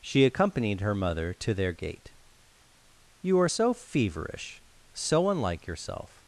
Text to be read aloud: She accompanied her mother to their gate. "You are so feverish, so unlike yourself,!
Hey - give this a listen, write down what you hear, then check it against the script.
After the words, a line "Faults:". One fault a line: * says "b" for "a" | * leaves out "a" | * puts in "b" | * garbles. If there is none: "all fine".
She accompanied her mother to their gate. "You are so feverish, so unlike yourself,!
Faults:
all fine